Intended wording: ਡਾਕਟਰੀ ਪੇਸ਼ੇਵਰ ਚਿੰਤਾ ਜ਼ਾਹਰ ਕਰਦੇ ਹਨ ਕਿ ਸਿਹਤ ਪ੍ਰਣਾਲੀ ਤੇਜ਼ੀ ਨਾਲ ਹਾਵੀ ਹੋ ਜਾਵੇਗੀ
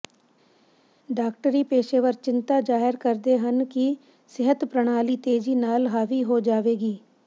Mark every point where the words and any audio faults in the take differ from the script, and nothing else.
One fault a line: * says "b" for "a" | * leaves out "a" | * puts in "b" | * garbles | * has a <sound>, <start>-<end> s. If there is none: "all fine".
all fine